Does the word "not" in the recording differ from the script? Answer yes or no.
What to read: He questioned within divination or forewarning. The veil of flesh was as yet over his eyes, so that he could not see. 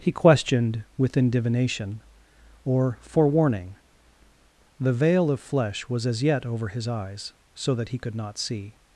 no